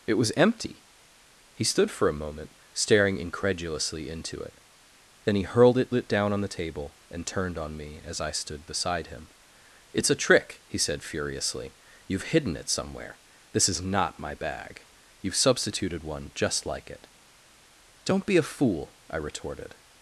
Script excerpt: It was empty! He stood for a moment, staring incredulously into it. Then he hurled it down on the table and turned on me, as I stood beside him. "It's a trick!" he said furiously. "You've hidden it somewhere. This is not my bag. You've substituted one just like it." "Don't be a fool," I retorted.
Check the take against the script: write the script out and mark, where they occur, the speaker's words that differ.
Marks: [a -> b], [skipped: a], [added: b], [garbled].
It was empty! He stood for a moment, staring incredulously into it. Then he hurled it [added: it] down on the table and turned on me, as I stood beside him. "It's a trick!" he said furiously. "You've hidden it somewhere. This is not my bag. You've substituted one just like it." "Don't be a fool," I retorted.